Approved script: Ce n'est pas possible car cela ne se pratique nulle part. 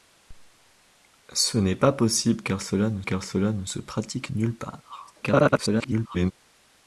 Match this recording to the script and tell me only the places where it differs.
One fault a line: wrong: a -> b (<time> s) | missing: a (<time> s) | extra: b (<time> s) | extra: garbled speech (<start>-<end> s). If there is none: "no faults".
extra: car cela ne (3.0 s)
extra: garbled speech (5.2-6.3 s)